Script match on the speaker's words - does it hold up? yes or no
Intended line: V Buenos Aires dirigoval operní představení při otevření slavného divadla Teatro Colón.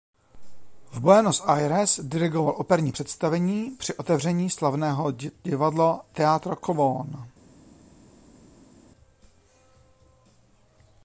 yes